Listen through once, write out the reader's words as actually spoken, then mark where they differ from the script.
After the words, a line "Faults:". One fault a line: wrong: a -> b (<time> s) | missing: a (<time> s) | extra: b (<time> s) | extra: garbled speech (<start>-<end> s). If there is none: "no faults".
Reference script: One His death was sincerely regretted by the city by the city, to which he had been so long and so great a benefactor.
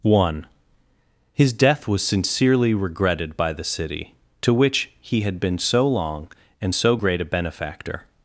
One His death was sincerely regretted by the city, to which he had been so long and so great a benefactor.
Faults:
missing: by the city (4.2 s)